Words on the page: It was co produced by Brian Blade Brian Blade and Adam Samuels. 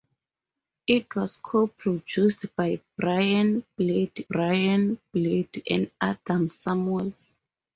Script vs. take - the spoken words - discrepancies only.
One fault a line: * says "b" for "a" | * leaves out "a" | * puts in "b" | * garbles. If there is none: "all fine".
all fine